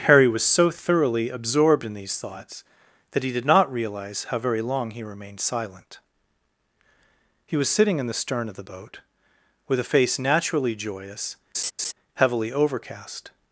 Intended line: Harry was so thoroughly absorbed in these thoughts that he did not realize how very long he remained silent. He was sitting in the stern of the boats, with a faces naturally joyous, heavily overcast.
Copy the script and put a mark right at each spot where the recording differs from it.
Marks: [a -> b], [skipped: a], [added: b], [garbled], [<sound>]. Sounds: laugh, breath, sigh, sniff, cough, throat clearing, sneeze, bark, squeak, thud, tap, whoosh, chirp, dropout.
Harry was so thoroughly absorbed in these thoughts that he did not realize how very long he remained silent. He was sitting in the stern of the [boats, -> boat] with a [faces -> face] naturally joyous, [laugh] heavily overcast.